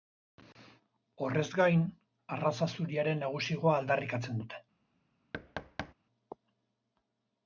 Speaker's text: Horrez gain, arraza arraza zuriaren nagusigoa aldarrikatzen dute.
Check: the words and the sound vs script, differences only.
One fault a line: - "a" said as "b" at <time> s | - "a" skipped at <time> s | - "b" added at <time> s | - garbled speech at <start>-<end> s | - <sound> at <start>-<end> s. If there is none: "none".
- "arraza" skipped at 2.7 s
- thud at 5.3-5.9 s